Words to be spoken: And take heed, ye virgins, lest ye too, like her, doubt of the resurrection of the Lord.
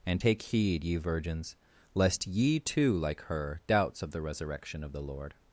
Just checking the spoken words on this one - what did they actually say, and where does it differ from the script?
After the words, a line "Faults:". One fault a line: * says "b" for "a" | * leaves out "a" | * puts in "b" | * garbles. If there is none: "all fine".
And take heed, ye virgins, lest ye too, like her, doubts of the resurrection of the Lord.
Faults:
* says "doubts" for "doubt"